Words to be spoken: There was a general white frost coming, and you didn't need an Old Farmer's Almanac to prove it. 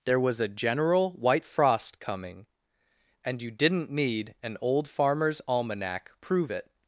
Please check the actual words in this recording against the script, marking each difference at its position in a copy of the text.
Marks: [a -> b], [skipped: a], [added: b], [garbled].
There was a general white frost coming, and you didn't need an Old Farmer's Almanac [skipped: to] prove it.